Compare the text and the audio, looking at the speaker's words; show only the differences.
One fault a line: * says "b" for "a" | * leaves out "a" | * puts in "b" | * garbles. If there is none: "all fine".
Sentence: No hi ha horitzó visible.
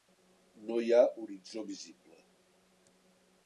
all fine